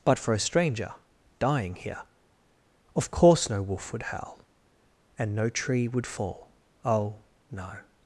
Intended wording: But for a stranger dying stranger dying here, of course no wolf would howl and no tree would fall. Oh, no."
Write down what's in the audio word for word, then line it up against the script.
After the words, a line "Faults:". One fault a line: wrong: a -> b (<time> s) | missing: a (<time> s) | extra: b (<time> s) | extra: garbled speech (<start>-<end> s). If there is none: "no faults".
But for a stranger dying here, of course no wolf would howl and no tree would fall. Oh, no."
Faults:
missing: stranger dying (1.8 s)